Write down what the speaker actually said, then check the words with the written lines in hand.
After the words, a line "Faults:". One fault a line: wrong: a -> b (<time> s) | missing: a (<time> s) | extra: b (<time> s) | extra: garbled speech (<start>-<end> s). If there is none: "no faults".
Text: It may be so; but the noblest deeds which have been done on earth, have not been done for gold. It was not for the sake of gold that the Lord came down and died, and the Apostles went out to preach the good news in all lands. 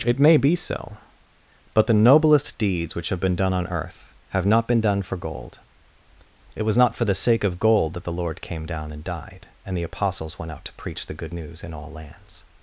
It may be so; but the noblest deeds which have been done on earth, have not been done for gold. It was not for the sake of gold that the Lord came down and died, and the Apostles went out to preach the good news in all lands.
Faults:
no faults